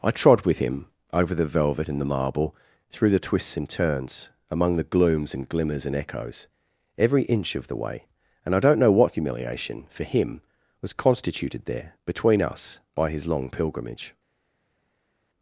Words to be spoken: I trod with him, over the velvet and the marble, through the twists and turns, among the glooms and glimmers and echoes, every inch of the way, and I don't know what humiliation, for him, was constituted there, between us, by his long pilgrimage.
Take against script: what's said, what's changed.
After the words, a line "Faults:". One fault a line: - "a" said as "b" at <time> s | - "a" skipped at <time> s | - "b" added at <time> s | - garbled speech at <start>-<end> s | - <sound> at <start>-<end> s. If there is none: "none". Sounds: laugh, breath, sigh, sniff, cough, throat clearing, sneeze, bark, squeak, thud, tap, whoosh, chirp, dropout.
I trod with him, over the velvet and the marble, through the twists and turns, among the glooms and glimmers and echoes, every inch of the way, and I don't know what humiliation, for him, was constituted there, between us, by his long pilgrimage.
Faults:
none